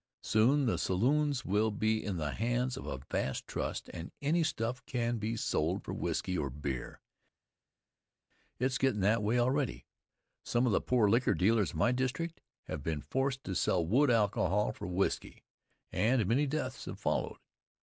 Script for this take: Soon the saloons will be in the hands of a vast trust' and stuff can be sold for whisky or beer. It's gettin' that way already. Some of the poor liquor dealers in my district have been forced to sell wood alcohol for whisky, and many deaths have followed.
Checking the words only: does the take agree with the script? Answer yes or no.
no